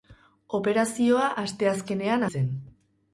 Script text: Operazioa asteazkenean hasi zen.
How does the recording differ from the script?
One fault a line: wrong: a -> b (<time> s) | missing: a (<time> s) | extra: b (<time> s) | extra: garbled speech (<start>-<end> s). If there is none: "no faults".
missing: hasi (2.2 s)